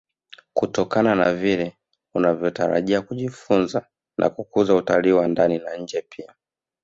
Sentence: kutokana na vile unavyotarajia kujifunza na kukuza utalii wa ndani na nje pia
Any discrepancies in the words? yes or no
no